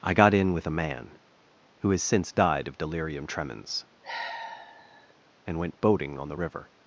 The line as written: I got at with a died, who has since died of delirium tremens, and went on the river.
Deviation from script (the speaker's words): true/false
true